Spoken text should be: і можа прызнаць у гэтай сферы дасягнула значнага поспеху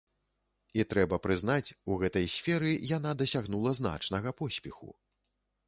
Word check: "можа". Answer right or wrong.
wrong